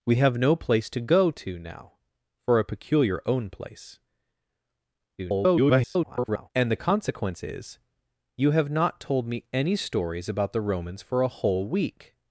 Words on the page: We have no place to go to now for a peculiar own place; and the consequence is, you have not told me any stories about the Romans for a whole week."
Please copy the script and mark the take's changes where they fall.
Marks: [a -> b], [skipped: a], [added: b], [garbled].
We have no place to go to now for a peculiar own place; [garbled] and the consequence is, you have not told me any stories about the Romans for a whole week."